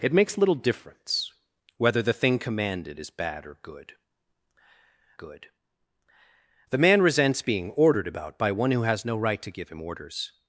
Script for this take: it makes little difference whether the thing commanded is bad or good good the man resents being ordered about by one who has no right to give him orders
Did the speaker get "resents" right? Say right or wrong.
right